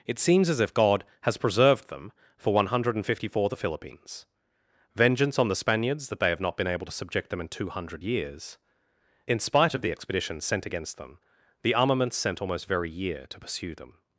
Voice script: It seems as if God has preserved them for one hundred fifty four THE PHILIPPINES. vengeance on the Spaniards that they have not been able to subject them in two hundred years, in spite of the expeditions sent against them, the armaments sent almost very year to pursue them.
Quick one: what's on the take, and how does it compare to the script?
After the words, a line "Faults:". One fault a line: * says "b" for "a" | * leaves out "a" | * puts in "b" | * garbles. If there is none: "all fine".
It seems as if God has preserved them for one hundred fifty four THE PHILIPPINES. vengeance on the Spaniards that they have not been able to subject them in two hundred years, in spite of the expeditions sent against them, the armaments sent almost very year to pursue them.
Faults:
all fine